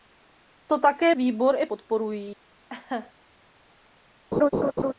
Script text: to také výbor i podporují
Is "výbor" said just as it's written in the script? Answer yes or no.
yes